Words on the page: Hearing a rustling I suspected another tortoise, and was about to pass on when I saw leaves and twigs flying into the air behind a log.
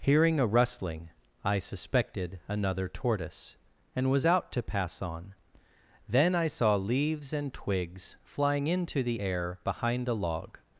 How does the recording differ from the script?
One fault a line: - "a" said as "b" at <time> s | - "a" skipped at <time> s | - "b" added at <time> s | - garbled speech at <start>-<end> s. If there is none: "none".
- "about" said as "out" at 4.3 s
- "when" said as "then" at 6.1 s